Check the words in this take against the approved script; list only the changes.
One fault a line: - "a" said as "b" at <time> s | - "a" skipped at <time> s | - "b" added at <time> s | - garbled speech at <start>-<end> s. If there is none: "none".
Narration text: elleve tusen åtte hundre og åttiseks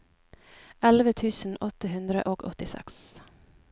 none